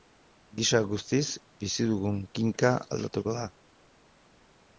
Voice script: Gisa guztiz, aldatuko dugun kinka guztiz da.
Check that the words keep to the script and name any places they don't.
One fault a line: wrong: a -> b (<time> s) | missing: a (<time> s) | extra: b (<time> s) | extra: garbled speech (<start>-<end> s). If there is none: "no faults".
wrong: aldatuko -> bizi (1.6 s)
wrong: guztiz -> aldatuko (3.0 s)